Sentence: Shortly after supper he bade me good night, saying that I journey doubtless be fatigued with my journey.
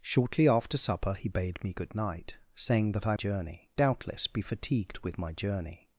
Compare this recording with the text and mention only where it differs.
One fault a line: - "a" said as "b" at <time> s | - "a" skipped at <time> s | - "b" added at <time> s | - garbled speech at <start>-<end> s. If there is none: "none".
none